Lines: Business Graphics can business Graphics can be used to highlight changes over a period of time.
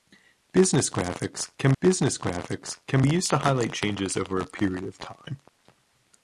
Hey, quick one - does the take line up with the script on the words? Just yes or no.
yes